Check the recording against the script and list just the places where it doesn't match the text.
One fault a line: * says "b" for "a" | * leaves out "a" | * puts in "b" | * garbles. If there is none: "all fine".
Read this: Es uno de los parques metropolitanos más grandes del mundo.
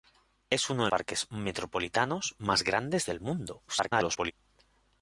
* leaves out "los"
* garbles